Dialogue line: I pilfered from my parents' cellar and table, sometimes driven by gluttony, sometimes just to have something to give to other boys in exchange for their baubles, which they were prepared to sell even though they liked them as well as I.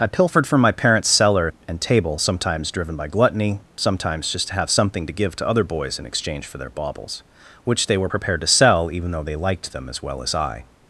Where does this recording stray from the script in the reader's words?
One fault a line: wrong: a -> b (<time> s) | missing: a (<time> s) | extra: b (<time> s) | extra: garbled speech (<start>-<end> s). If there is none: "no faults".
no faults